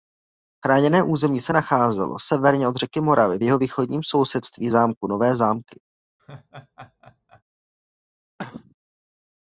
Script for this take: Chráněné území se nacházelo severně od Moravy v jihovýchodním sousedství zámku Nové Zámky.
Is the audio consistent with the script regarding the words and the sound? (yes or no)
no